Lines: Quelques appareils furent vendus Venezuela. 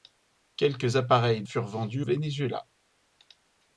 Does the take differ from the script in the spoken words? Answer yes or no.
no